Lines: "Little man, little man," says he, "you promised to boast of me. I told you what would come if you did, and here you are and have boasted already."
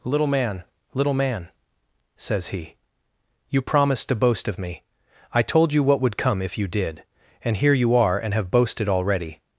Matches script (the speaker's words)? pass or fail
pass